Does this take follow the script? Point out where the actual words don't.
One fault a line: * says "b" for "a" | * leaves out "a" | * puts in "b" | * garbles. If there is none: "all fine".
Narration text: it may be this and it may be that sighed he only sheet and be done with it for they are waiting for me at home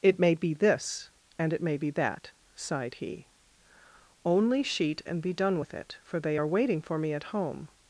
all fine